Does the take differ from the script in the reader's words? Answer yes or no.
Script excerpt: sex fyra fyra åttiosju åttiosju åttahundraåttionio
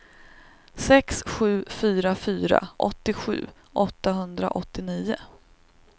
yes